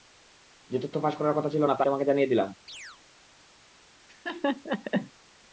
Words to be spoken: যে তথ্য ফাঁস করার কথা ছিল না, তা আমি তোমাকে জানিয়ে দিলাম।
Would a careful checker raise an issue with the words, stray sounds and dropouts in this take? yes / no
yes